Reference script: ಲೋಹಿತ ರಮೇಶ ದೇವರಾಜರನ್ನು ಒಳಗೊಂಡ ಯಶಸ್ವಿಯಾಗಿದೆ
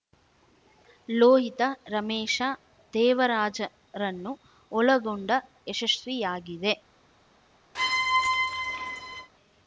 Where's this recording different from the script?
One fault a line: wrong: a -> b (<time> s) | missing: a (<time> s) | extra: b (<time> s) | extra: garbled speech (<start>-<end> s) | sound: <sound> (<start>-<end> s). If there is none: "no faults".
sound: squeak (7.7-9.3 s)